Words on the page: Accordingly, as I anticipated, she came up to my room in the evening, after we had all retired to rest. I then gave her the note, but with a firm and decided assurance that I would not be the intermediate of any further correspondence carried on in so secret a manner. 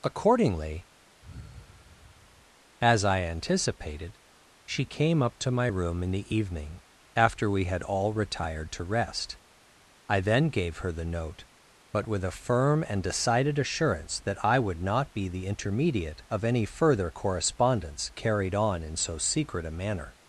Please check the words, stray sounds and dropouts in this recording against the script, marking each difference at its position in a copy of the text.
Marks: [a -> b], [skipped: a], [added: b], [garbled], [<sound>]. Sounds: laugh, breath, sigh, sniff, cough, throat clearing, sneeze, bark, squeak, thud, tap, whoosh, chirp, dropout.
Accordingly, [sigh] as I anticipated, she came up to my room in the evening, after we had all retired to rest. I then gave her the note, but with a firm and decided assurance that I would not be the intermediate of any further correspondence carried on in so secret a manner.